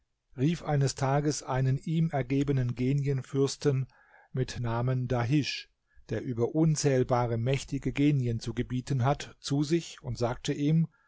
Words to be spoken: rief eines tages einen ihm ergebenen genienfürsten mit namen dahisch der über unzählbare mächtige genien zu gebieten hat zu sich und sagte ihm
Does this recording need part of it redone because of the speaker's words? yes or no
no